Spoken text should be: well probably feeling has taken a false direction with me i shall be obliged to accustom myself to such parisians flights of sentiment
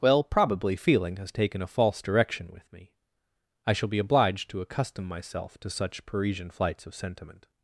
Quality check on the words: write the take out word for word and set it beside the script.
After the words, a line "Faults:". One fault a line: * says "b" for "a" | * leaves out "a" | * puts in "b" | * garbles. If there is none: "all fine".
well probably feeling has taken a false direction with me i shall be obliged to accustom myself to such parisian flights of sentiment
Faults:
* says "parisian" for "parisians"